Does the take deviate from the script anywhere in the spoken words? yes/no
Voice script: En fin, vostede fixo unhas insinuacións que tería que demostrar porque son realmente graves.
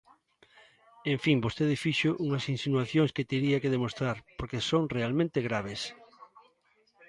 no